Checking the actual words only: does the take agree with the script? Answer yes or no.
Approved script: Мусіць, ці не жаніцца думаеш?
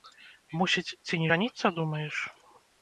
yes